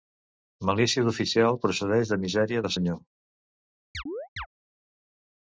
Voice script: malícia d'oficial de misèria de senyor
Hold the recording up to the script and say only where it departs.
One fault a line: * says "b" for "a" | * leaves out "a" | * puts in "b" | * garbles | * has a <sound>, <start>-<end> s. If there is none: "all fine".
* puts in "procedeix"
* has a chirp, 3.9-4.5 s